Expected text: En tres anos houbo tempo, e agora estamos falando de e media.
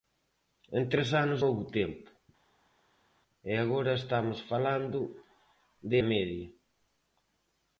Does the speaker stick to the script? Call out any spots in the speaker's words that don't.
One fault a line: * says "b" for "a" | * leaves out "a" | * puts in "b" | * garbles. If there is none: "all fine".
all fine